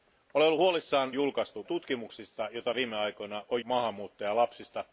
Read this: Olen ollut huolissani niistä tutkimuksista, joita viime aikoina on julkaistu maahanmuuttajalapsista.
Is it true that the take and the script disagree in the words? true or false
true